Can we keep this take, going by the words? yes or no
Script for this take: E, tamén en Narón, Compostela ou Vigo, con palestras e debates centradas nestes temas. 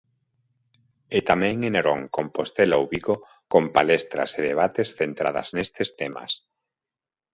yes